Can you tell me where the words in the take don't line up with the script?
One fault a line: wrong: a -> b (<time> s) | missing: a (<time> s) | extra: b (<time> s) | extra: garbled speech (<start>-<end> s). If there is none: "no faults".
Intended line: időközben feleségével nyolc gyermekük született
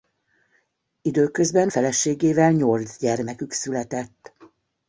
no faults